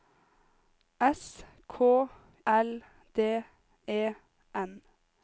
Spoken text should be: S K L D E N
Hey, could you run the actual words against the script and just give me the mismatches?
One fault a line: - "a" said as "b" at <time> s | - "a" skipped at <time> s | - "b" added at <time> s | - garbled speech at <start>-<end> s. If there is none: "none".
none